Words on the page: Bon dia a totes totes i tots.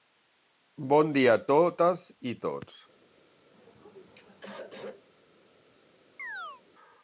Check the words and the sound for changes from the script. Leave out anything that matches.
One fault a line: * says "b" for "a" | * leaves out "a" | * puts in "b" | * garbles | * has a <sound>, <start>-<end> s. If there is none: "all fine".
* leaves out "totes"
* has a throat clearing, 3.5-5.1 s
* has a chirp, 6.2-6.6 s